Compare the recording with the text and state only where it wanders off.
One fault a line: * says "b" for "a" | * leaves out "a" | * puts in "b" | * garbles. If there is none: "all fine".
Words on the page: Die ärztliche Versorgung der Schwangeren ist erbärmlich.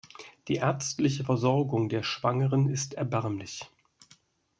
all fine